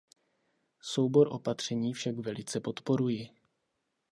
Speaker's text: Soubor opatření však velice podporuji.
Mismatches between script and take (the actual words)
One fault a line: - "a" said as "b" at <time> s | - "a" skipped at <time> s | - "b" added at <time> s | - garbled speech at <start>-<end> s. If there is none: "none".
none